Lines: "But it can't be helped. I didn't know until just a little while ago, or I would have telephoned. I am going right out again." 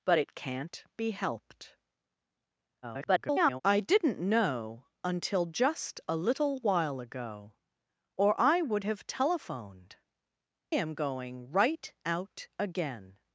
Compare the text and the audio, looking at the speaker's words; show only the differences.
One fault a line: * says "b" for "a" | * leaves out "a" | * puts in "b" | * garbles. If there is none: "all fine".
* garbles
* leaves out "I"